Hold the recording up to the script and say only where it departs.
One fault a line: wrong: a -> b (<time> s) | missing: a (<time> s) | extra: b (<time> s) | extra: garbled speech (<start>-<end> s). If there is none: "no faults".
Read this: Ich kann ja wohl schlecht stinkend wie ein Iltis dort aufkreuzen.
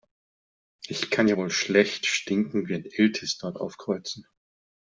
no faults